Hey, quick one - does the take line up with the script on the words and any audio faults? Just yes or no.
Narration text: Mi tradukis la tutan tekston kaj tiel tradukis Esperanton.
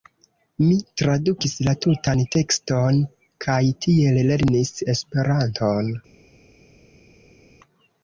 no